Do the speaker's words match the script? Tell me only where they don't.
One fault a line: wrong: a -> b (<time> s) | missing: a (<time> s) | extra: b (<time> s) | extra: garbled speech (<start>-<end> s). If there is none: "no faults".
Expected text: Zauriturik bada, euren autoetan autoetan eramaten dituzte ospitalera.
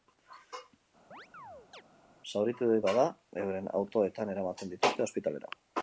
missing: autoetan (4.3 s)